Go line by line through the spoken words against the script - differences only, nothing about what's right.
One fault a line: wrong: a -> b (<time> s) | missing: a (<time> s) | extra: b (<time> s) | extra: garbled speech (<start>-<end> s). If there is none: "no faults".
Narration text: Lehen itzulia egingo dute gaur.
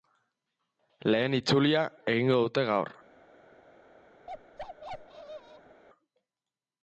no faults